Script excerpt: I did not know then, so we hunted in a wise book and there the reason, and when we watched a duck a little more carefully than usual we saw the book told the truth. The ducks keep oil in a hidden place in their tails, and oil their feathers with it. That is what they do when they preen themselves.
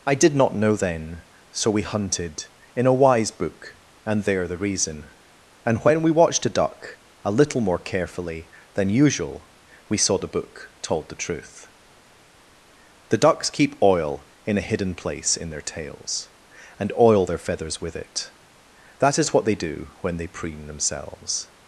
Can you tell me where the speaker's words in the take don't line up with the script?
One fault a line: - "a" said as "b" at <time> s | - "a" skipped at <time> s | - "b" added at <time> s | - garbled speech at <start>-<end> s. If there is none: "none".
none